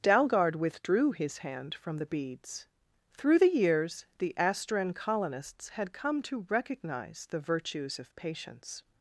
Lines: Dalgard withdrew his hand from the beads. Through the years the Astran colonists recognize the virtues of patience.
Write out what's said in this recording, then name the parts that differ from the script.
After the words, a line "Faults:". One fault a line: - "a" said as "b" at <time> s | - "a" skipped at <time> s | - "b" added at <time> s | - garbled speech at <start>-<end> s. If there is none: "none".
Dalgard withdrew his hand from the beads. Through the years the Astran colonists had come to recognize the virtues of patience.
Faults:
- "had come to" added at 5.7 s